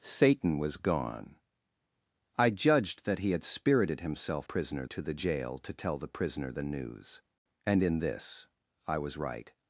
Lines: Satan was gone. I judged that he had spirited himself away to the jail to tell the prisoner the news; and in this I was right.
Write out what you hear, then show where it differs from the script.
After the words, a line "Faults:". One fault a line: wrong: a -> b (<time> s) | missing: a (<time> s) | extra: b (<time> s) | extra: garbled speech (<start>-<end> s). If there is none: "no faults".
Satan was gone. I judged that he had spirited himself prisoner to the jail to tell the prisoner the news; and in this I was right.
Faults:
wrong: away -> prisoner (4.4 s)